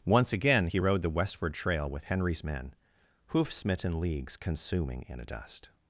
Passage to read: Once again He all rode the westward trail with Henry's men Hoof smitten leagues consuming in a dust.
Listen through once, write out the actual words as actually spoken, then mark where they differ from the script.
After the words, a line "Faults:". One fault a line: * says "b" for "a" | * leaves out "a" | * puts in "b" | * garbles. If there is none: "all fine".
Once again He rode the westward trail with Henry's men Hoof smitten leagues consuming in a dust.
Faults:
* leaves out "all"